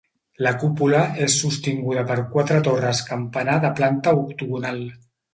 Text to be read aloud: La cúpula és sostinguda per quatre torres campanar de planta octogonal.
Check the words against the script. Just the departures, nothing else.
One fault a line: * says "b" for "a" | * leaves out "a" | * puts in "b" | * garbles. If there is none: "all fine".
all fine